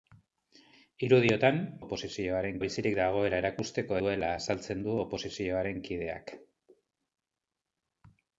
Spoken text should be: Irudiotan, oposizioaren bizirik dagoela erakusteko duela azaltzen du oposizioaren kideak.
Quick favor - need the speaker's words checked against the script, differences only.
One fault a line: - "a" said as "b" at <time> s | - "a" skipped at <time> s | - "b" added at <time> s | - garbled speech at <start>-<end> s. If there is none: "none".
none